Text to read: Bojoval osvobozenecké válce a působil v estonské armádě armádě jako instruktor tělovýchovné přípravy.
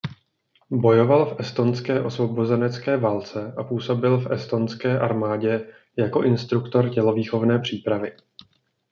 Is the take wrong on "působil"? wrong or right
right